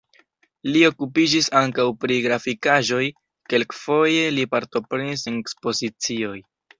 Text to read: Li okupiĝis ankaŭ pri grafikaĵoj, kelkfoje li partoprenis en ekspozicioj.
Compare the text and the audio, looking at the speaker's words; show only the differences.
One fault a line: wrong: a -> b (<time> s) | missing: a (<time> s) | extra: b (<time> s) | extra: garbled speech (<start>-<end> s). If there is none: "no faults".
no faults